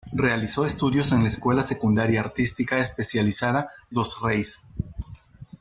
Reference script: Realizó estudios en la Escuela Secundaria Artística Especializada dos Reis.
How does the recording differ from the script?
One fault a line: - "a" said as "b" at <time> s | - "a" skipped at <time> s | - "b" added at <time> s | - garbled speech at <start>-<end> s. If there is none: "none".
none